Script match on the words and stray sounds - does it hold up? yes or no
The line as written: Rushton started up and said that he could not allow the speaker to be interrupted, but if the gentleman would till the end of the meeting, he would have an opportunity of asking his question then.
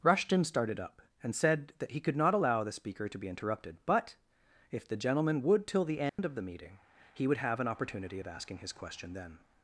no